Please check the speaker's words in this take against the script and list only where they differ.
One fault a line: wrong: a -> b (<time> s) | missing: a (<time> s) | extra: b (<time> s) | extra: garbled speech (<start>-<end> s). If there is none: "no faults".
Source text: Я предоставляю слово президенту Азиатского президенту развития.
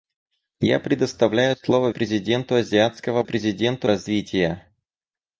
no faults